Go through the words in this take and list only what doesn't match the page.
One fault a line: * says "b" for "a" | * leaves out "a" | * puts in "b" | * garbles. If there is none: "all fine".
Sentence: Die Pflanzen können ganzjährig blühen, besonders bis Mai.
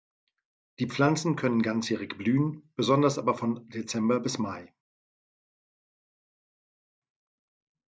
* puts in "aber von Dezember"